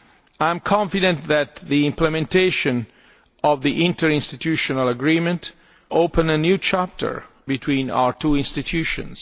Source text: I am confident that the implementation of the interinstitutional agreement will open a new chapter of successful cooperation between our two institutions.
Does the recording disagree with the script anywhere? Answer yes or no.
yes